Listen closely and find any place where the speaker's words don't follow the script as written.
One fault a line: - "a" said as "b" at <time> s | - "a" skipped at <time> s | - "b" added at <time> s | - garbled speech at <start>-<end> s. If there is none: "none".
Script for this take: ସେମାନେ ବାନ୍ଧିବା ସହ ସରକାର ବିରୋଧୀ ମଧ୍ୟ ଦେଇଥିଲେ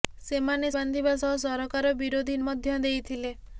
none